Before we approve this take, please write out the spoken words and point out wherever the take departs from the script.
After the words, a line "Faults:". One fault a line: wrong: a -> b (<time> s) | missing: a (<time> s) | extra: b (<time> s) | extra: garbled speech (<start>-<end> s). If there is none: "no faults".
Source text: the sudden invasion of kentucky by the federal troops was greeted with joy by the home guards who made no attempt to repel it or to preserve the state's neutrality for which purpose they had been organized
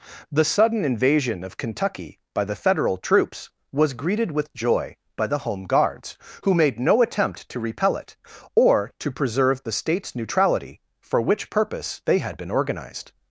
the sudden invasion of kentucky by the federal troops was greeted with joy by the home guards who made no attempt to repel it or to preserve the state's neutrality for which purpose they had been organized
Faults:
no faults